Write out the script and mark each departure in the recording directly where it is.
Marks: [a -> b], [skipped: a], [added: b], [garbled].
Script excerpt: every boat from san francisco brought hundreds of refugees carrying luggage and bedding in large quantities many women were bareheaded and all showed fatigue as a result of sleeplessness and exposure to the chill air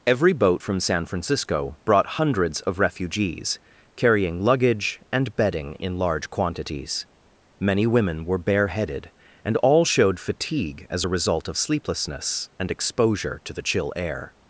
every boat from san francisco brought hundreds of refugees carrying luggage and bedding in large quantities many women were bareheaded and all showed fatigue as a result of sleeplessness and exposure to the chill air